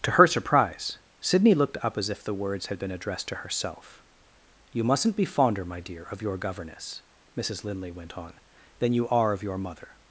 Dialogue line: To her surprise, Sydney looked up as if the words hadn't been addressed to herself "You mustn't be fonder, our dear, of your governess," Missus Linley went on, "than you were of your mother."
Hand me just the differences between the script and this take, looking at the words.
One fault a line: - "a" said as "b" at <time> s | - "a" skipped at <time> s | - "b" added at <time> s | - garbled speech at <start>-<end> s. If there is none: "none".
- "hadn't" said as "had" at 2.7 s
- "our" said as "my" at 5.6 s
- "were" said as "are" at 9.1 s